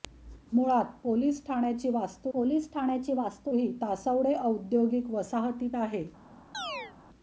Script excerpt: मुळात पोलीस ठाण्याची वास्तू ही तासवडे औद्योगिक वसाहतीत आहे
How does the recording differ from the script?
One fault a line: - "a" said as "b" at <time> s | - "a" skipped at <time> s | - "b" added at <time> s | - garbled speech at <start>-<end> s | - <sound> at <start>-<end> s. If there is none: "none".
- "पोलीस ठाण्याची वास्तू" added at 2.3 s
- chirp at 6.5-6.9 s